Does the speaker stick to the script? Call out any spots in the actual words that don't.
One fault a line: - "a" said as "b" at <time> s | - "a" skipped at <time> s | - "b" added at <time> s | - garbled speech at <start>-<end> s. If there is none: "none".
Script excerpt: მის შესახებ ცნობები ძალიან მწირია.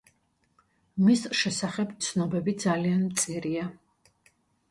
none